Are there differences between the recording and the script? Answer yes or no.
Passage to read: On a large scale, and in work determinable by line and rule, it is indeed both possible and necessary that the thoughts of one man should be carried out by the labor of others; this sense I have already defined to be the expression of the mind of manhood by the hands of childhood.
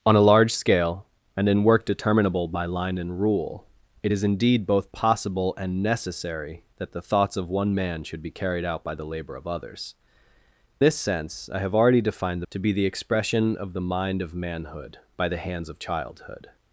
no